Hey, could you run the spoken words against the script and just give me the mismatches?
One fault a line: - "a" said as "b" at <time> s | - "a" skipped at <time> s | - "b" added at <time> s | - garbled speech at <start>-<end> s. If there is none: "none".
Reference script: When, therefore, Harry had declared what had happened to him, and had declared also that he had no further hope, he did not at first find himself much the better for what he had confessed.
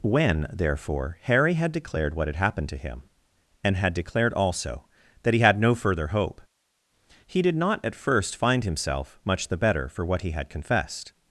none